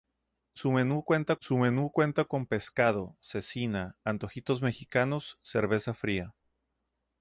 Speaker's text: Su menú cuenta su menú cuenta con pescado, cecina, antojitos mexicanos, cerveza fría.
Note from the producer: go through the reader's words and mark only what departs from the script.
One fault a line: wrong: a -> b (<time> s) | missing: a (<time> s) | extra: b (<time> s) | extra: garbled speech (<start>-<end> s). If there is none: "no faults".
no faults